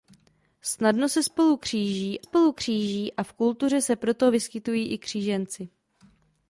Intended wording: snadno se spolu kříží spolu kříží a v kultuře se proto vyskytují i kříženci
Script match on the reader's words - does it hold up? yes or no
yes